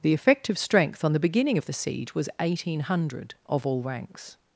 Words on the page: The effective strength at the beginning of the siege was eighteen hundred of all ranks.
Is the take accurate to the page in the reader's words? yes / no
no